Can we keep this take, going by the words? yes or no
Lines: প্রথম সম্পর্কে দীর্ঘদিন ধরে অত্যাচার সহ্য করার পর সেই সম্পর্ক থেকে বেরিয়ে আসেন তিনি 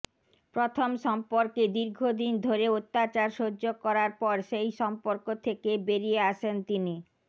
yes